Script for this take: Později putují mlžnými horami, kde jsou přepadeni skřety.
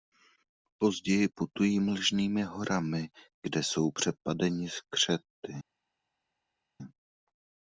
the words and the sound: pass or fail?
pass